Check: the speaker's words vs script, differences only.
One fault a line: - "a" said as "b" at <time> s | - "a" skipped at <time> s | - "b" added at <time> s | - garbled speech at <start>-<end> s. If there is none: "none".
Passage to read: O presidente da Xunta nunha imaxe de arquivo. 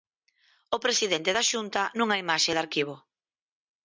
none